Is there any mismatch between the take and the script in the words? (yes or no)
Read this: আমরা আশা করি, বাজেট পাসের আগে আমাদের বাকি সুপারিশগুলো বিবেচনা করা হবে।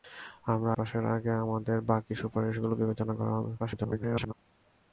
yes